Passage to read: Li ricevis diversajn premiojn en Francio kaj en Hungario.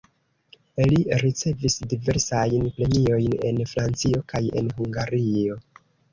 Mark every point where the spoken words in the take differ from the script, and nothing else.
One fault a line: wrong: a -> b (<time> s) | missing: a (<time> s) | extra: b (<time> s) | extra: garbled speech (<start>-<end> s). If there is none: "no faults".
no faults